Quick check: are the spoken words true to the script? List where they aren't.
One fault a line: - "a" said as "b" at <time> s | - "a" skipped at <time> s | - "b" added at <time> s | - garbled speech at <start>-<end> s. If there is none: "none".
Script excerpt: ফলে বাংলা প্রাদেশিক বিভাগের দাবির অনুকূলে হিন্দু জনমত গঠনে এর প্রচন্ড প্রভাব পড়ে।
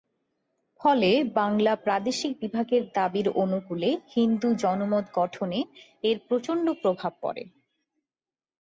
none